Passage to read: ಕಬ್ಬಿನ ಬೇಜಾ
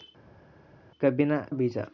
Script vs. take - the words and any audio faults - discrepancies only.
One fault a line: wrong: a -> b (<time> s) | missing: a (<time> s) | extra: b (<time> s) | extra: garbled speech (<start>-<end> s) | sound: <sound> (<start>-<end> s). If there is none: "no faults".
no faults